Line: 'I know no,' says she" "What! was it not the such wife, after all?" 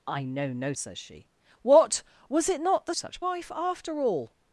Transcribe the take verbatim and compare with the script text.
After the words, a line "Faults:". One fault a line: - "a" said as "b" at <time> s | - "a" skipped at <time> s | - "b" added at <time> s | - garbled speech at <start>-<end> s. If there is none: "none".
'I know no,' says she" "What! was it not the such wife, after all?"
Faults:
none